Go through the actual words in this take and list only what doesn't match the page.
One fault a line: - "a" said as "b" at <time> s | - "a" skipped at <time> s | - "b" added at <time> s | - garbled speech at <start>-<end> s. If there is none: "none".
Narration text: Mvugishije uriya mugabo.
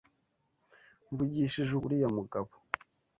none